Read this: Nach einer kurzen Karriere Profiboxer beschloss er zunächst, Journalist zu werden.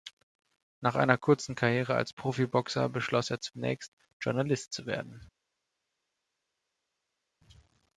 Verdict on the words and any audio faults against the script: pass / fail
fail